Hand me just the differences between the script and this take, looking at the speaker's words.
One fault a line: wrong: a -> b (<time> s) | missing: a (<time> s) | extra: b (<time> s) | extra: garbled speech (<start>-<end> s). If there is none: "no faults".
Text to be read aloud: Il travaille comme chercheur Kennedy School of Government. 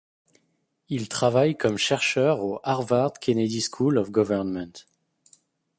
extra: au Harvard (2.4 s)